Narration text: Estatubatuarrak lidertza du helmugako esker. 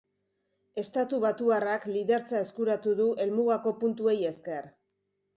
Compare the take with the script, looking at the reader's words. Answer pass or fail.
fail